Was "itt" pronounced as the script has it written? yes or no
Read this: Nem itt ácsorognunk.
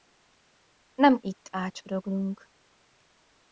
yes